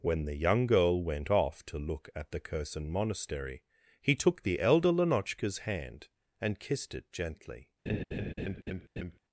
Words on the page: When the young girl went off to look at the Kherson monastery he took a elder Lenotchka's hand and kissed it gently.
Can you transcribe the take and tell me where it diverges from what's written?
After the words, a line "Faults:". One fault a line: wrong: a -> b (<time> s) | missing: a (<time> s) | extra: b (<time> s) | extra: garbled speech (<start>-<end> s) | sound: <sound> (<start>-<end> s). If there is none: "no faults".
When the young girl went off to look at the Kherson monastery he took the elder Lenotchka's hand and kissed it gently.
Faults:
wrong: a -> the (4.4 s)
sound: laugh (7.9-9.2 s)